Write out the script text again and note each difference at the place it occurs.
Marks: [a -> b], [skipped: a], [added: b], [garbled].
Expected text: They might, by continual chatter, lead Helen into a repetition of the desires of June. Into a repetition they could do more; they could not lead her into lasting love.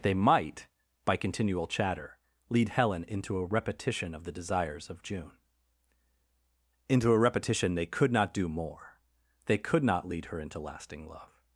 They might, by continual chatter, lead Helen into a repetition of the desires of June. Into a repetition they could [added: not] do more; they could not lead her into lasting love.